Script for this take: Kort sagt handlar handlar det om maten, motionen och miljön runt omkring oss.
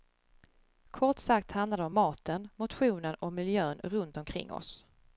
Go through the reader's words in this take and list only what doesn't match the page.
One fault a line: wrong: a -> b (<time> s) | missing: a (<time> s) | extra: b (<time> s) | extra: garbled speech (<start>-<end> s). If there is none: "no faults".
missing: handlar (1.8 s)